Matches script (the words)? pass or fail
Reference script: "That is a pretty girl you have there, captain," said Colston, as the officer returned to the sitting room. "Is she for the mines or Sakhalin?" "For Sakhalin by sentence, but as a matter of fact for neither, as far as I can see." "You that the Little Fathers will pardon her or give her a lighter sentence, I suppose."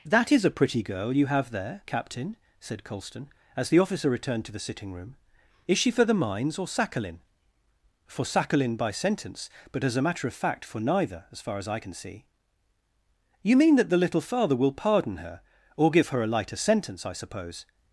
fail